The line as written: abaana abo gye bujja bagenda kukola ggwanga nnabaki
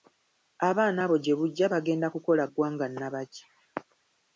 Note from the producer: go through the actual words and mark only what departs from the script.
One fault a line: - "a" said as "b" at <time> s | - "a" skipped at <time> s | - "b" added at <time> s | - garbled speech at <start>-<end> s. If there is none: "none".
none